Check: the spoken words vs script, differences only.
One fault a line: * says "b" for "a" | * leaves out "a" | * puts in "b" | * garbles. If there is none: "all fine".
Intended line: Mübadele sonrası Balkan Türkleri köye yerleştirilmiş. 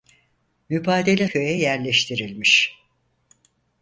* leaves out "sonrası Balkan Türkleri"